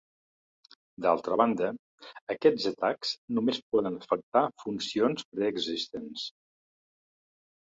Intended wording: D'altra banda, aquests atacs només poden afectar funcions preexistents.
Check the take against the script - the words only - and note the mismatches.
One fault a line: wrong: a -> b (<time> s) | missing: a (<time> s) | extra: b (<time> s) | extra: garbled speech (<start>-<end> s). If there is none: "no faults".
no faults